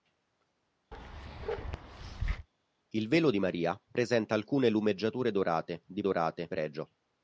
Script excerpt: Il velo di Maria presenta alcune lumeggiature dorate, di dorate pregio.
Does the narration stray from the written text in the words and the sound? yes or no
yes